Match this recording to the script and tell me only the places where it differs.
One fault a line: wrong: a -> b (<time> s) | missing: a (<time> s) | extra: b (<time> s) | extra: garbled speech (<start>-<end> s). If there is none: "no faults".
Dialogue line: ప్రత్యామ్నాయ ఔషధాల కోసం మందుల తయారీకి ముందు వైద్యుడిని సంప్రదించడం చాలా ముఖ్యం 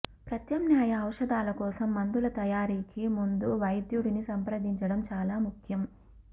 no faults